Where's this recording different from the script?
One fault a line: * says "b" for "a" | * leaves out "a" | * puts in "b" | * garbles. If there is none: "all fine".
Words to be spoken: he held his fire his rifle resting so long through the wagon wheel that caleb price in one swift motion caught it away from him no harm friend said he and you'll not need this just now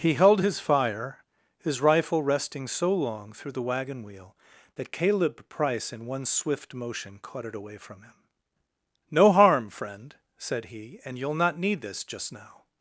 all fine